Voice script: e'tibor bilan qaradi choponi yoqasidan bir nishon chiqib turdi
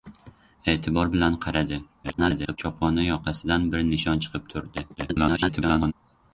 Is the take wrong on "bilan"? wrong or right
right